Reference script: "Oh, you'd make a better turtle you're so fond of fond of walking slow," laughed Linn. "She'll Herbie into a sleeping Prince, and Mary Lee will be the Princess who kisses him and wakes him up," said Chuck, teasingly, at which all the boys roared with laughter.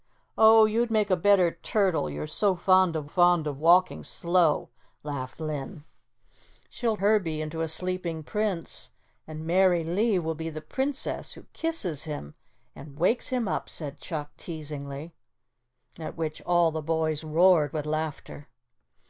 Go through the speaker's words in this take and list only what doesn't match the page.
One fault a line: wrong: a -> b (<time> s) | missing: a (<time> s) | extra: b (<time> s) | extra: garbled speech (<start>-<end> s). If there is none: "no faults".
no faults